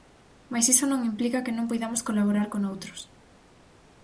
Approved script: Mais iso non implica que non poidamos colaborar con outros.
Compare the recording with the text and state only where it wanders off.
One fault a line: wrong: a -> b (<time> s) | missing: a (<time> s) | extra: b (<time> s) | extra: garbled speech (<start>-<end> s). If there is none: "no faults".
no faults